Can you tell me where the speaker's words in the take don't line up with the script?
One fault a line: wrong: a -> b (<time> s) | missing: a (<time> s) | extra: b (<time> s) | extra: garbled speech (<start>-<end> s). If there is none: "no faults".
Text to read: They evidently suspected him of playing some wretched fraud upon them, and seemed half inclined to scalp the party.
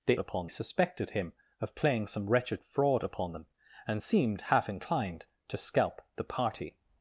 wrong: evidently -> upon (0.2 s)